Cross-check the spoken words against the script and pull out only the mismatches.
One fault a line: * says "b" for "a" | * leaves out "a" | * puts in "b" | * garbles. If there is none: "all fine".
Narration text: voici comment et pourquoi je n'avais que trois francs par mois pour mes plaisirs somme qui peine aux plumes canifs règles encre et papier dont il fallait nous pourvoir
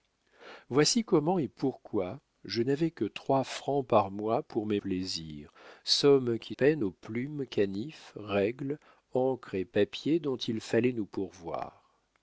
all fine